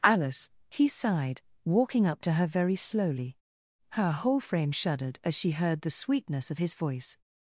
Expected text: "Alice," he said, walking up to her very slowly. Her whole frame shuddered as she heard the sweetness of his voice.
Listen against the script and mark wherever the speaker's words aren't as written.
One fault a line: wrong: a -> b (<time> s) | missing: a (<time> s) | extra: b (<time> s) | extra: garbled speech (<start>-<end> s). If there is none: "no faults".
wrong: said -> sighed (0.9 s)